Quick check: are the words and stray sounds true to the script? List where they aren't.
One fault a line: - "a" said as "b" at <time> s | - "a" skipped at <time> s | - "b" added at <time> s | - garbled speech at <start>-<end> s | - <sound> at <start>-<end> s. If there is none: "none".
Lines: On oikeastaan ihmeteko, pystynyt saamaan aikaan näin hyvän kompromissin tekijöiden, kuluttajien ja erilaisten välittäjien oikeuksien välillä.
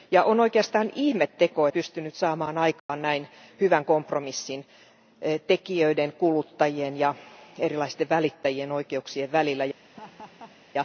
- dropout at 2.8-2.9 s
- laugh at 9.8-10.6 s